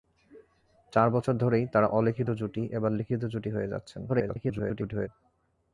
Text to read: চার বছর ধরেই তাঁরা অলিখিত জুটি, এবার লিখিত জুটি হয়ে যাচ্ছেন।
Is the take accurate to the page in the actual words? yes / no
no